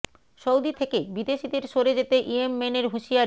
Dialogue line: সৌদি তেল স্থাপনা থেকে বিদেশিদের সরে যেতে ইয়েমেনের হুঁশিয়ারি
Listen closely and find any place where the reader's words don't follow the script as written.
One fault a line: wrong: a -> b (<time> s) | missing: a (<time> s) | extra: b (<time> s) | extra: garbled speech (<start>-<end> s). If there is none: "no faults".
missing: তেল স্থাপনা (0.7 s)